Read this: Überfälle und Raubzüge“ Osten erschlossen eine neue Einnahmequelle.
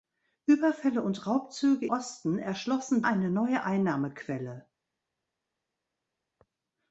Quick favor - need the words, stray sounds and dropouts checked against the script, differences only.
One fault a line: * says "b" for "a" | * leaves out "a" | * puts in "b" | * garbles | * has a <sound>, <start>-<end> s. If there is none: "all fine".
all fine